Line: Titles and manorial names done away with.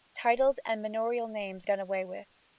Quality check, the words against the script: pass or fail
pass